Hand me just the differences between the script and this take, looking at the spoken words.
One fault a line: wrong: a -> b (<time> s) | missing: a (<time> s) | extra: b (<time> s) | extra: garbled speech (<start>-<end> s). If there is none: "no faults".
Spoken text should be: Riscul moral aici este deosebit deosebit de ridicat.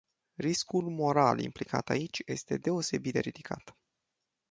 extra: implicat (1.4 s)
missing: deosebit (3.1 s)